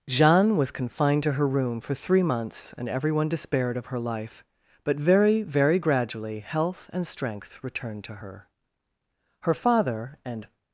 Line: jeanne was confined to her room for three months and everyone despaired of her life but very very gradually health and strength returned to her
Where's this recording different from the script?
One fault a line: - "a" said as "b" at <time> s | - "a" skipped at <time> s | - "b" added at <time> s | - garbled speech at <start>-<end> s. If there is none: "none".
- "her father and" added at 9.4 s